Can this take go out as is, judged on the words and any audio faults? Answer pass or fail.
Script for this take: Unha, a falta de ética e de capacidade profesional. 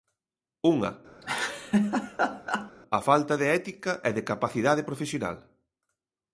fail